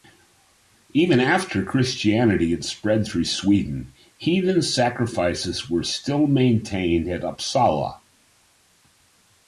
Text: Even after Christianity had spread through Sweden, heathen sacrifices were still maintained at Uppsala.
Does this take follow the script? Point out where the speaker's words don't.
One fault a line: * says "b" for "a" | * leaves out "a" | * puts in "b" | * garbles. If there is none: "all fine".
all fine